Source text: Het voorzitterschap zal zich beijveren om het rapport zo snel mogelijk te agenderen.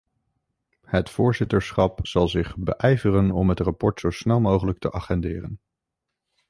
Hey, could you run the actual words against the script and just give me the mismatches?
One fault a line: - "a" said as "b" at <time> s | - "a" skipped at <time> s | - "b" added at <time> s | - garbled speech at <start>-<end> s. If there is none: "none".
none